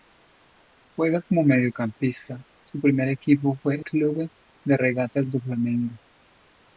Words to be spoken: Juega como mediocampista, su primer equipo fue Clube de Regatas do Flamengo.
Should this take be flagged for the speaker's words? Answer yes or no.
no